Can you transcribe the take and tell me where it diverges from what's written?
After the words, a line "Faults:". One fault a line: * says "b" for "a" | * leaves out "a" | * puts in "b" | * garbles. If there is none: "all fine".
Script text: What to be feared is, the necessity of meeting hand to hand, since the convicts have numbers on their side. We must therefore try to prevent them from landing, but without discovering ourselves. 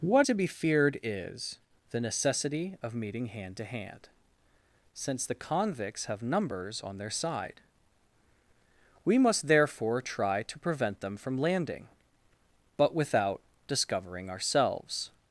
What to be feared is, the necessity of meeting hand to hand, since the convicts have numbers on their side. We must therefore try to prevent them from landing, but without discovering ourselves.
Faults:
all fine